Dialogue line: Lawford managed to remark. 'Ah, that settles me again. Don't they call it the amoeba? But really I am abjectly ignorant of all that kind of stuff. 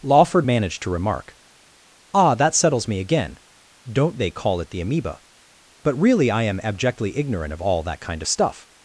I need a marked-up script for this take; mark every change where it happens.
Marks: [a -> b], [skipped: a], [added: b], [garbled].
Lawford managed to remark. 'Ah, that settles me again. Don't they call it the amoeba? But really I am abjectly ignorant of all that kind of stuff.